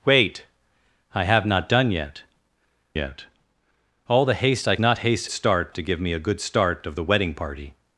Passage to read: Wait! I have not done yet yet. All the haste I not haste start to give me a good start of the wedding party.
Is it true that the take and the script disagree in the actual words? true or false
false